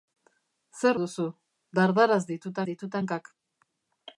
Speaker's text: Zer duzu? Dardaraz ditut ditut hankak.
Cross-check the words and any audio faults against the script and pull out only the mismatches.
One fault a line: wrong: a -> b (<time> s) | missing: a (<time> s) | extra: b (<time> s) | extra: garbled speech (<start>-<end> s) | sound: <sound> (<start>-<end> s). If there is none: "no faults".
no faults